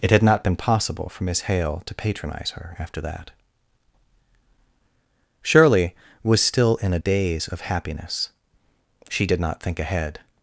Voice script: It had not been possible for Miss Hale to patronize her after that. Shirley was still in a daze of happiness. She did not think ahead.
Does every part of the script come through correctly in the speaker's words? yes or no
yes